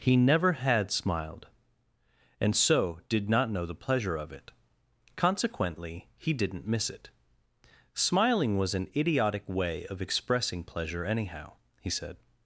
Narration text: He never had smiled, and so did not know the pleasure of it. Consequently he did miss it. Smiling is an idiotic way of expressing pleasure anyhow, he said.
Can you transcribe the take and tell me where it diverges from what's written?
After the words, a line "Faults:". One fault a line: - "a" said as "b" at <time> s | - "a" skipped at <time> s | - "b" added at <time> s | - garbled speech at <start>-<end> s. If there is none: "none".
He never had smiled, and so did not know the pleasure of it. Consequently he didn't miss it. Smiling was an idiotic way of expressing pleasure anyhow, he said.
Faults:
- "did" said as "didn't" at 6.3 s
- "is" said as "was" at 8.6 s